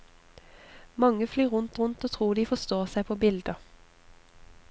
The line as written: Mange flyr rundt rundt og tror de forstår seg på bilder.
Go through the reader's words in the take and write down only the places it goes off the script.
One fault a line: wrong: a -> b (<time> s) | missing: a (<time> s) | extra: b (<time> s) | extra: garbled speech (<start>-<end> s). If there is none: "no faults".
no faults